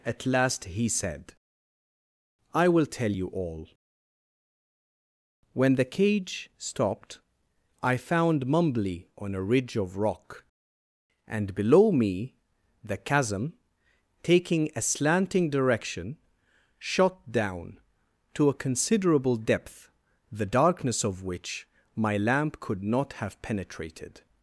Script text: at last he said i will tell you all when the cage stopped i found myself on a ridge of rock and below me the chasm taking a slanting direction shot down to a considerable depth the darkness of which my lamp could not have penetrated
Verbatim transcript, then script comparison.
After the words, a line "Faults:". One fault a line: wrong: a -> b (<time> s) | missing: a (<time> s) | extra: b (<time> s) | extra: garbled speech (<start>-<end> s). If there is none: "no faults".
at last he said i will tell you all when the cage stopped i found mumbly on a ridge of rock and below me the chasm taking a slanting direction shot down to a considerable depth the darkness of which my lamp could not have penetrated
Faults:
wrong: myself -> mumbly (8.5 s)